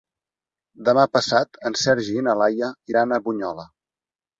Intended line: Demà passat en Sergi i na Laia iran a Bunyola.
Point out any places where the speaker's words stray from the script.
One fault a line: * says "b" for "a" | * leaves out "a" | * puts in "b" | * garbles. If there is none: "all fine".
all fine